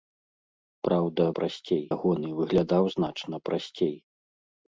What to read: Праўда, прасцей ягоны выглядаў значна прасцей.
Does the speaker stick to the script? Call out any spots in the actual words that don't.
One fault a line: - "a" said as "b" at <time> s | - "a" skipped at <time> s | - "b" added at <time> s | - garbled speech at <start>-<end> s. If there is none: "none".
none